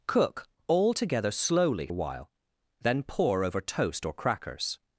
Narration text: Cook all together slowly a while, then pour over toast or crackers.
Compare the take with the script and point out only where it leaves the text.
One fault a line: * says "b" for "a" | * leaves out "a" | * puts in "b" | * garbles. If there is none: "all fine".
all fine